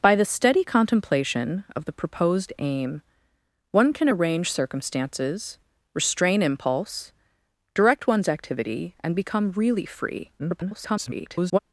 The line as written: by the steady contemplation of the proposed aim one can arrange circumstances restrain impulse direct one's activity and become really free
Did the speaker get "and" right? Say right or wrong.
right